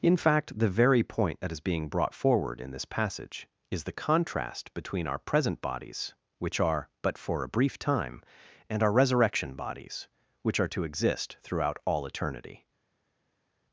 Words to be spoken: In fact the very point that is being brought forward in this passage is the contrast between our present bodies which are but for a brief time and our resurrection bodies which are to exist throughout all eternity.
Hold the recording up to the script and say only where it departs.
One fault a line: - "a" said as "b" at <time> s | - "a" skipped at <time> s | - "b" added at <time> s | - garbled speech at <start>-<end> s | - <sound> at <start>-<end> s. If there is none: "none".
none